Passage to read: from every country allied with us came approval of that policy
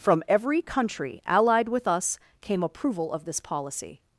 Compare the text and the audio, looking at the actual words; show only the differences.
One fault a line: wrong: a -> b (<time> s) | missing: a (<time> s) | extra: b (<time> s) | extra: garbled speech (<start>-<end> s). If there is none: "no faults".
wrong: that -> this (3.3 s)